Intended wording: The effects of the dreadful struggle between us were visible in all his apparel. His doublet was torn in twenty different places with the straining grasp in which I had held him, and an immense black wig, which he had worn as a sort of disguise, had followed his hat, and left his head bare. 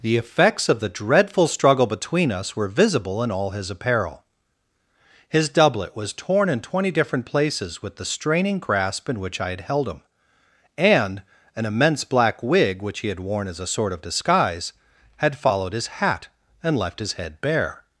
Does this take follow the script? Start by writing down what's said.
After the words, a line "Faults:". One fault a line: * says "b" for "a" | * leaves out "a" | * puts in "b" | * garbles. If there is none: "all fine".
The effects of the dreadful struggle between us were visible in all his apparel. His doublet was torn in twenty different places with the straining grasp in which I had held him, and an immense black wig, which he had worn as a sort of disguise, had followed his hat, and left his head bare.
Faults:
all fine